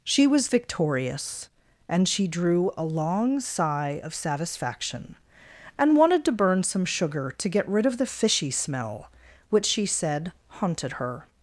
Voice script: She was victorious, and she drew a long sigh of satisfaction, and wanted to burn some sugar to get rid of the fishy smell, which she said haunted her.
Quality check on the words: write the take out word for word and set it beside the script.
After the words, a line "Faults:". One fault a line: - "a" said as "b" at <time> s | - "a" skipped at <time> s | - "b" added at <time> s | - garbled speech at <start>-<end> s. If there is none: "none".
She was victorious, and she drew a long sigh of satisfaction, and wanted to burn some sugar to get rid of the fishy smell, which she said haunted her.
Faults:
none